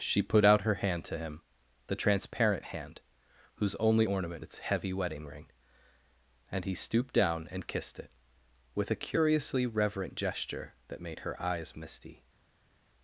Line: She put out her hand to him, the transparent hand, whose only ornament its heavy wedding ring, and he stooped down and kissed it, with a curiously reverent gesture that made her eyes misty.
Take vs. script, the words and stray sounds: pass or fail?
pass